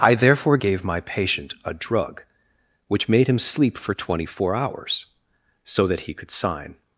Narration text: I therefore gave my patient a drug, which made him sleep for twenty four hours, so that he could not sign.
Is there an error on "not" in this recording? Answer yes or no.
yes